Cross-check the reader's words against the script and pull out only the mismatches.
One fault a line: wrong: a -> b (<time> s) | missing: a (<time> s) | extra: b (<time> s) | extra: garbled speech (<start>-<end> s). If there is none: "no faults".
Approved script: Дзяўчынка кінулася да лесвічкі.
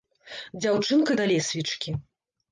missing: кінулася (1.2 s)